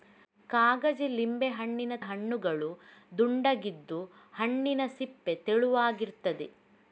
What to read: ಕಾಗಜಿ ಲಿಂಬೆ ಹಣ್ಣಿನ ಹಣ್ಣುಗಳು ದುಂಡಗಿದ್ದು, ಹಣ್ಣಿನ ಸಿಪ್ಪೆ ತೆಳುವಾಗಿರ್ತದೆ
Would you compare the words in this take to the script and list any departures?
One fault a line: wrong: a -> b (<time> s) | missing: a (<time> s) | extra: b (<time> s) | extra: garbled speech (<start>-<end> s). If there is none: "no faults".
no faults